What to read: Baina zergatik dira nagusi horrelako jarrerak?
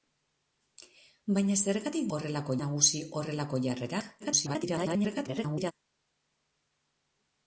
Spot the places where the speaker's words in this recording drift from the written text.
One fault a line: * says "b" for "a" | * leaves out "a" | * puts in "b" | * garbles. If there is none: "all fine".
* says "horrelako" for "dira"
* garbles